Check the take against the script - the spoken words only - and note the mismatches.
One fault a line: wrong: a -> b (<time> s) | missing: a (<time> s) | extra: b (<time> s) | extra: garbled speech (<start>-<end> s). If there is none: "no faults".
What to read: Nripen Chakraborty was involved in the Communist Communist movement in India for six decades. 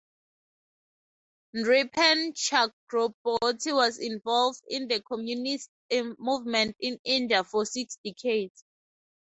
missing: Communist (5.7 s)